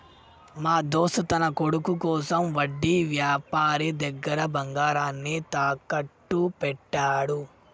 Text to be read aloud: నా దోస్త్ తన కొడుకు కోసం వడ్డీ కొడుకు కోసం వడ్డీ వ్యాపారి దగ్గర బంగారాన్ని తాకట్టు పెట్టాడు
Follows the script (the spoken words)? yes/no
no